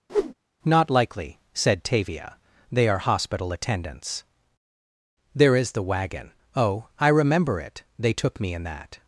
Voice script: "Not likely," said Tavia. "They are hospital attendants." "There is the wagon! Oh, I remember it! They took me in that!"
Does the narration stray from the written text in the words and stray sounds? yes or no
yes